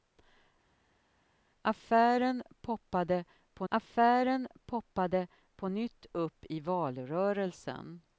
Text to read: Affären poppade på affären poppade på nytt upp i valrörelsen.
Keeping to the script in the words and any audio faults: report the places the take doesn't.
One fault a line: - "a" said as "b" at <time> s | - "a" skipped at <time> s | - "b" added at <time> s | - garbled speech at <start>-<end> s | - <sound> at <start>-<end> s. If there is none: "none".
none